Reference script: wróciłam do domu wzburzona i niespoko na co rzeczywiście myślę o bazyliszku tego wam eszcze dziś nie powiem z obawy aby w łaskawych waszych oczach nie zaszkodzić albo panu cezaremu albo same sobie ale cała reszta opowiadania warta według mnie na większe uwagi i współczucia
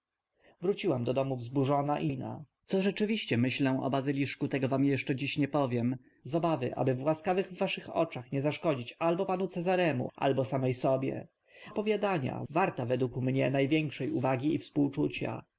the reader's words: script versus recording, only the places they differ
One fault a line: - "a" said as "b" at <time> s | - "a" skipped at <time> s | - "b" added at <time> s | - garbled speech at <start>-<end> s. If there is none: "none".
- "niespoko" skipped at 2.1 s
- "ale cała reszta" skipped at 11.3 s